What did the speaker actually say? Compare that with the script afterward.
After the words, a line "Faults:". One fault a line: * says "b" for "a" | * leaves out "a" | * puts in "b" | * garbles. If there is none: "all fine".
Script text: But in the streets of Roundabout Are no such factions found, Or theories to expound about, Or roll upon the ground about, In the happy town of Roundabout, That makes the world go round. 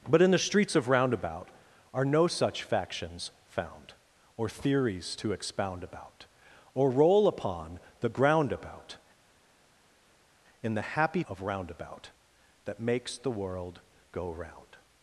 But in the streets of Roundabout Are no such factions found, Or theories to expound about, Or roll upon the ground about, In the happy of Roundabout, That makes the world go round.
Faults:
* leaves out "town"